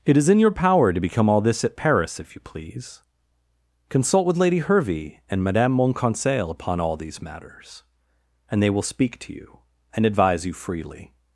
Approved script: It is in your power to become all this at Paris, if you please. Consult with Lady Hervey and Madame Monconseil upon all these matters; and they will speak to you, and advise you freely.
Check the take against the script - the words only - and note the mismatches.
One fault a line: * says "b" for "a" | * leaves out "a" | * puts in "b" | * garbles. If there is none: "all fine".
all fine